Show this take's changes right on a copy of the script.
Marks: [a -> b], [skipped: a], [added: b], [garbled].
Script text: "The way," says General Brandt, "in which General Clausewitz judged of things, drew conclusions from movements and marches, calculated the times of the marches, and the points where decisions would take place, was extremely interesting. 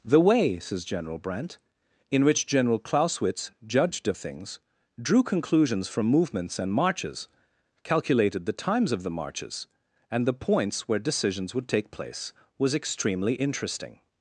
"The way," says General Brandt, "in which General Clausewitz judged of things, drew conclusions from movements and marches, calculated the times of the marches, and the points where decisions would take place, was extremely interesting.